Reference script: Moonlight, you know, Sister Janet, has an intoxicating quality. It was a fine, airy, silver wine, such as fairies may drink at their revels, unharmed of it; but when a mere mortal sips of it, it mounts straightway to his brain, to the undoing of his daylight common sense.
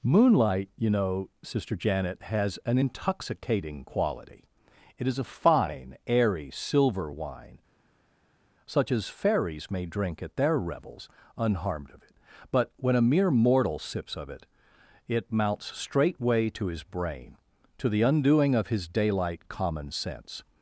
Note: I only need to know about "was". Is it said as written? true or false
false